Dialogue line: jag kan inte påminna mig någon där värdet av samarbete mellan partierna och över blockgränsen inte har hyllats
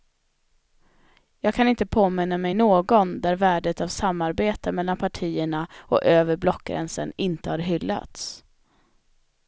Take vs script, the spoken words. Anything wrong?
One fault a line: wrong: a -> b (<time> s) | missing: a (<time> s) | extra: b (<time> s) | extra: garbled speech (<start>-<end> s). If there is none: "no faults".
no faults